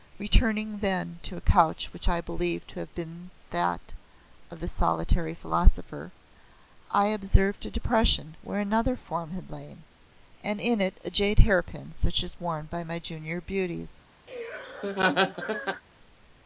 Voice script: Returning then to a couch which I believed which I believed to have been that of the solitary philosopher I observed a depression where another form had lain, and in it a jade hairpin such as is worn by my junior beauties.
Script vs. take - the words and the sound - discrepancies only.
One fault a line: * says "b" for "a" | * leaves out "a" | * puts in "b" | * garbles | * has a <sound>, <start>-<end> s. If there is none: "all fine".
* leaves out "which I believed"
* has a laugh, 14.3-15.8 s